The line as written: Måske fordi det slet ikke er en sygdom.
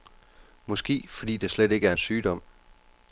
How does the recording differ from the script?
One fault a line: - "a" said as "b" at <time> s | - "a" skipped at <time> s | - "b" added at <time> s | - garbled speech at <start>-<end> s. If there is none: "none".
none